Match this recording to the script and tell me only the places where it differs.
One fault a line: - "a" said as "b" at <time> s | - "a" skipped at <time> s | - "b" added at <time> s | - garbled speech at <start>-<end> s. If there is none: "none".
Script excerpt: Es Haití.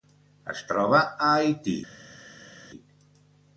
- "troba a" added at 0.7 s